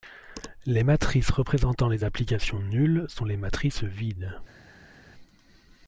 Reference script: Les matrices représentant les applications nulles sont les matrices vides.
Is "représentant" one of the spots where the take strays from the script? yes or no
no